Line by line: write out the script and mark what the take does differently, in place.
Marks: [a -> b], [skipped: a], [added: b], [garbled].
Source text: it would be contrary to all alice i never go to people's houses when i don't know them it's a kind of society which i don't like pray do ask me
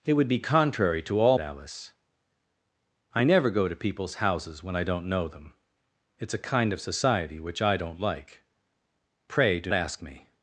it would be contrary to all alice i never go to people's houses when i don't know them it's a kind of society which i don't like pray do ask me